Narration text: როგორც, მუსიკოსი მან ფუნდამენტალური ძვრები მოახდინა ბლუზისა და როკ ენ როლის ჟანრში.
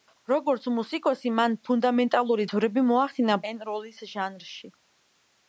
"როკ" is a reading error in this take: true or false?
true